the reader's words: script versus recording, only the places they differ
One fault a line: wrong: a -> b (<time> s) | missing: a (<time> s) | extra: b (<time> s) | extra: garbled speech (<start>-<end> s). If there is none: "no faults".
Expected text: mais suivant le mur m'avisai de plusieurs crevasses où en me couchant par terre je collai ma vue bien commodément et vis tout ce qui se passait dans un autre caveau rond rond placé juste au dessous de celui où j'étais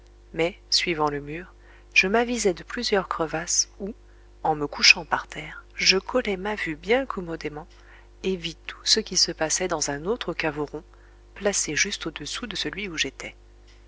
extra: je (1.9 s)
missing: rond (10.8 s)